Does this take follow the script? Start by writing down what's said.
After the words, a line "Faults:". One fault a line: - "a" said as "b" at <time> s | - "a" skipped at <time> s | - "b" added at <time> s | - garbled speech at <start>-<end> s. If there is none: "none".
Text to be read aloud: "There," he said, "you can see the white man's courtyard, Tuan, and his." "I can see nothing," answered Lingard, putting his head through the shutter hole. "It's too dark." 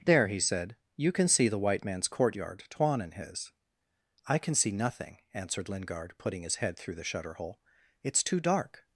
"There," he said, "you can see the white man's courtyard, Tuan, and his." "I can see nothing," answered Lingard, putting his head through the shutter hole. "It's too dark."
Faults:
none